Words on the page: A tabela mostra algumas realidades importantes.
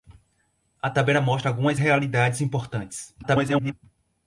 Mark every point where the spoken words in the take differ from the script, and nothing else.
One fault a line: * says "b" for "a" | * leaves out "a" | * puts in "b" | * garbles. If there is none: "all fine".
* garbles